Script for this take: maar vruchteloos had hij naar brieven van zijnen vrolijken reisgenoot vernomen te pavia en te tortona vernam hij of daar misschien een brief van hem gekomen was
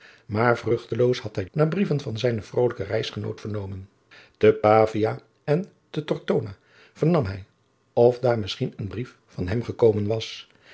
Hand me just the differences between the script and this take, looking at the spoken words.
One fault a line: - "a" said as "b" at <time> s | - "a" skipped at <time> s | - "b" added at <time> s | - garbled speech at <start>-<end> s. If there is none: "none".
none